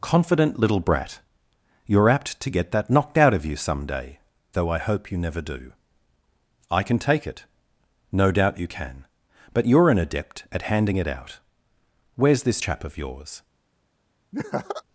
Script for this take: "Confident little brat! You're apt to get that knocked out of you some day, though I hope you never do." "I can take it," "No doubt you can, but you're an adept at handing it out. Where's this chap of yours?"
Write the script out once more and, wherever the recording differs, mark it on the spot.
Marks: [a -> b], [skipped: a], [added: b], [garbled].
"Confident little brat! You're apt to get that knocked out of you some day, though I hope you never do." "I can take it," "No doubt you can, but you're an adept at handing it out. Where's this chap of yours?"